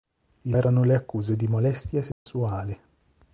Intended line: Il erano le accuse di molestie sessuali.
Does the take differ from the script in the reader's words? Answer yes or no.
no